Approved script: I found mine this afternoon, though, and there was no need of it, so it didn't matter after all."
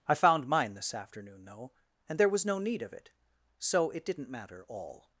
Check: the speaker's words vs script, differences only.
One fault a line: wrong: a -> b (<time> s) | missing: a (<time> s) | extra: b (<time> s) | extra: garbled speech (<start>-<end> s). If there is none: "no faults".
missing: after (4.7 s)